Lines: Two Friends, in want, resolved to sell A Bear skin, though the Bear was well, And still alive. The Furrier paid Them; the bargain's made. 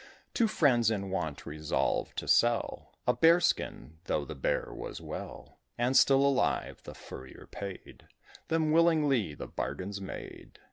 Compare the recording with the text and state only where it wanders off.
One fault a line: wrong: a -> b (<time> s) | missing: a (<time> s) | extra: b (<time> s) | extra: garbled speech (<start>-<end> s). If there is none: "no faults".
extra: willingly (8.7 s)